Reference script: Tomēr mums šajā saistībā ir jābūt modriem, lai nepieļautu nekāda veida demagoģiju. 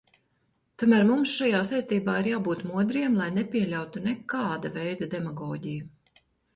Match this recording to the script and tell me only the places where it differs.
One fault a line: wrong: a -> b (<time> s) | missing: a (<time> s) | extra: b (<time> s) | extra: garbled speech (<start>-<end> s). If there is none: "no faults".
no faults